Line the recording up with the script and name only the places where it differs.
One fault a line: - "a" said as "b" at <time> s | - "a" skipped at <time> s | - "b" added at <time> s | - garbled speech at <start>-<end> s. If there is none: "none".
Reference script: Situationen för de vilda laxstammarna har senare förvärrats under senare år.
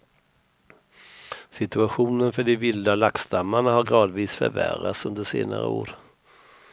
- "senare" said as "gradvis" at 3.8 s